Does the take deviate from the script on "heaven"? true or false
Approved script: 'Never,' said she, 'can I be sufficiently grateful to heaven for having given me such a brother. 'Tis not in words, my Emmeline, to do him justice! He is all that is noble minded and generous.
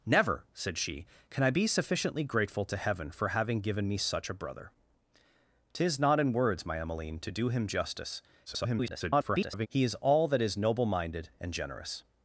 false